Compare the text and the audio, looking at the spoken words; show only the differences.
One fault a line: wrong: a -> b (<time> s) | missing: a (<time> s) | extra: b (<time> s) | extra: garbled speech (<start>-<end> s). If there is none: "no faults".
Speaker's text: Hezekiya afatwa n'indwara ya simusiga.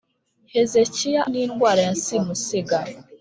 missing: afatwa (1.2 s)